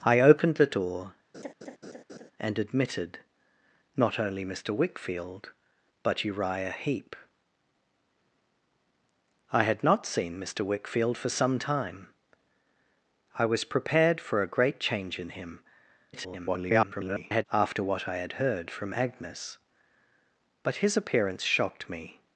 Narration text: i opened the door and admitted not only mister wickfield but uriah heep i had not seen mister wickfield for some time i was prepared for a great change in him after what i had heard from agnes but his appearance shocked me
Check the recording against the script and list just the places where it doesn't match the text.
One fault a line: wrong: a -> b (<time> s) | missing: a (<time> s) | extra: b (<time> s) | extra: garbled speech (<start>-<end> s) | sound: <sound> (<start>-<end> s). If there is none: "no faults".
sound: laugh (1.3-2.3 s)
extra: garbled speech (16.1-17.4 s)